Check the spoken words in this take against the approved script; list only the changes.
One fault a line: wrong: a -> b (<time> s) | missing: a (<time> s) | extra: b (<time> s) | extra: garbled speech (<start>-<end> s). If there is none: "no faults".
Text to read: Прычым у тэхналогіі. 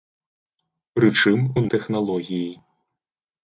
no faults